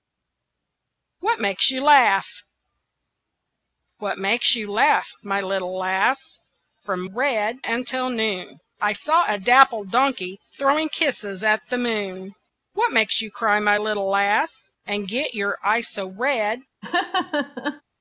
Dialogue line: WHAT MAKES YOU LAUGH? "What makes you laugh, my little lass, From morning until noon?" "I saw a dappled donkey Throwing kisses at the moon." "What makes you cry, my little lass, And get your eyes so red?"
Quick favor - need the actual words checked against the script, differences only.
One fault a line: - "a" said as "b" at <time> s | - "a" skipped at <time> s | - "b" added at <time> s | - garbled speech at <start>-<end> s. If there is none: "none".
- "morning" said as "red" at 7.1 s